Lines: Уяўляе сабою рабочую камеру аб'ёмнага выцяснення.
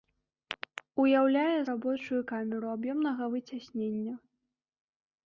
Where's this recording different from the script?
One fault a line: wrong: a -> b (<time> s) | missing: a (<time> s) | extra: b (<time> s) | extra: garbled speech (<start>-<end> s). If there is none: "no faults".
missing: сабою (1.6 s)